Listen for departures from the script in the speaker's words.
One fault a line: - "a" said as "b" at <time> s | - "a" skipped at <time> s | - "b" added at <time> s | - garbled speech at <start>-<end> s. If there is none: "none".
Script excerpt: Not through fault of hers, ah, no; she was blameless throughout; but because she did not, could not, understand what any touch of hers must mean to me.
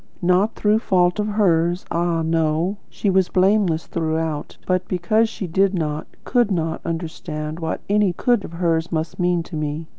- "touch" said as "could" at 8.1 s